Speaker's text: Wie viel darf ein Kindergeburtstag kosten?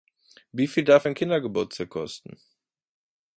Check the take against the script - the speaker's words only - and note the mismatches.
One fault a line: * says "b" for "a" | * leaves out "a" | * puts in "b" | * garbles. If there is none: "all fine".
all fine